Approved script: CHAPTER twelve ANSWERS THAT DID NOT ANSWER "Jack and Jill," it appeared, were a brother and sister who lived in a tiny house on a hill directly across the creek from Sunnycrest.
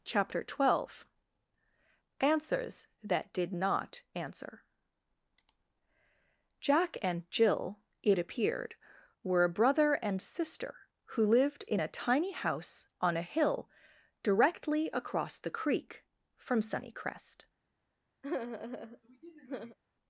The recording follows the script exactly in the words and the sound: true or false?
false